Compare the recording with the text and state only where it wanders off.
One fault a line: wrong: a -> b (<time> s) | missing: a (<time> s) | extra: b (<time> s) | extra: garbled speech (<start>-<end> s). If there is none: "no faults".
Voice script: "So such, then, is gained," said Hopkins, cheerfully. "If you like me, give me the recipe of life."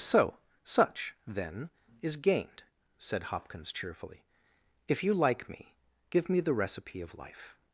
no faults